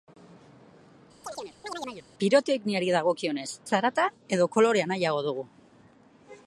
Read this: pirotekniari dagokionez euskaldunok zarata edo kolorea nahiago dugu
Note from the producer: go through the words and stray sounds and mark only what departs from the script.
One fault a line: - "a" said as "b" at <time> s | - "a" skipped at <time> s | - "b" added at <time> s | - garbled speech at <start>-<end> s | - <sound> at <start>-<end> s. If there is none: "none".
- chirp at 1.2-2.1 s
- "euskaldunok" skipped at 3.5 s